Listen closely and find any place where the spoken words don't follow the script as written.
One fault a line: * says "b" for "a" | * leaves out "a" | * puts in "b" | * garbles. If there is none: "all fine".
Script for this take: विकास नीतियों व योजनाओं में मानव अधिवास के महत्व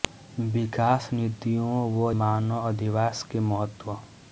* leaves out "योजनाओं में"